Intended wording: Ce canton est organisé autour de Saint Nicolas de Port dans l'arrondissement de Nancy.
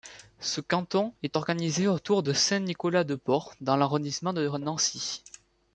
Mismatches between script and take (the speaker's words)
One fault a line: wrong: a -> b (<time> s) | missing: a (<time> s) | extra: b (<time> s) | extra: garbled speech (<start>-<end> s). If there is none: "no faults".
no faults